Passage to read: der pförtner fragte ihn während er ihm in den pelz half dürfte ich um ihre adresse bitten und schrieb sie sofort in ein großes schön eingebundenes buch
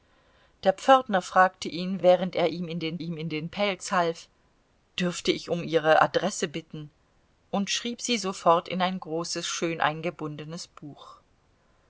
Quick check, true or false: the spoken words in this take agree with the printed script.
false